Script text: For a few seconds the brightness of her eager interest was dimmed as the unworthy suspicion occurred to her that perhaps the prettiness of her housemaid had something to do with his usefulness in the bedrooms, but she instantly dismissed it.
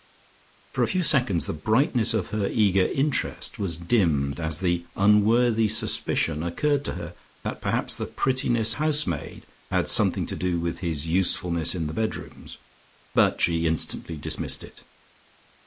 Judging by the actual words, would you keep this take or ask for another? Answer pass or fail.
fail